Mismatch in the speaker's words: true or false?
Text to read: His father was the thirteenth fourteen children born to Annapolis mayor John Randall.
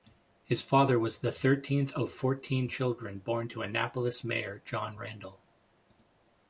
true